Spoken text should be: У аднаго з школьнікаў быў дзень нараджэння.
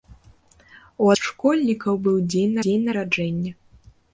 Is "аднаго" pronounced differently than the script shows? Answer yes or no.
yes